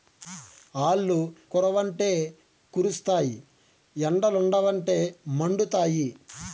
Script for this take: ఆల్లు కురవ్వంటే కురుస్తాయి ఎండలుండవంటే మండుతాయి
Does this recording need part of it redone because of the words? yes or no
no